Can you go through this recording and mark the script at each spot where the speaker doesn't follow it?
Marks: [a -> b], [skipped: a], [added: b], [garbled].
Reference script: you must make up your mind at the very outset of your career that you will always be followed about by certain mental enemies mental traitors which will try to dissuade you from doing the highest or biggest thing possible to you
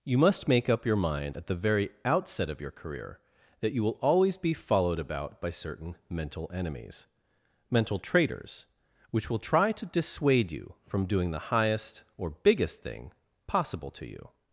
you must make up your mind at the very outset of your career that you will always be followed about by certain mental enemies mental traitors which will try to dissuade you from doing the highest or biggest thing possible to you